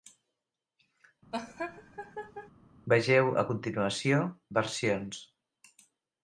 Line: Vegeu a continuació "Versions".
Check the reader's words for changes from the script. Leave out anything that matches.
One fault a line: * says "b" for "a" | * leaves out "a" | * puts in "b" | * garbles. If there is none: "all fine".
all fine